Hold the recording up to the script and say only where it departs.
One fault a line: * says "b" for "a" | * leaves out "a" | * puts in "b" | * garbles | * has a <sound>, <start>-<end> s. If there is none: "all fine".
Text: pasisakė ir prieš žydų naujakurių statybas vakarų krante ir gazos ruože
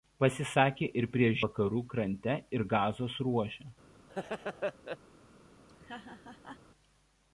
* leaves out "žydų naujakurių statybas"
* has a laugh, 4.1-5.0 s
* has a laugh, 5.7-6.6 s